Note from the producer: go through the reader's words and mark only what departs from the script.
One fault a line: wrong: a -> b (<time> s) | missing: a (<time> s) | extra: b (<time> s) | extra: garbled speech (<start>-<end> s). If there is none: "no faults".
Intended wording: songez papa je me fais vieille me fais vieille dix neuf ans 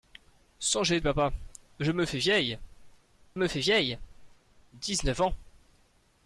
no faults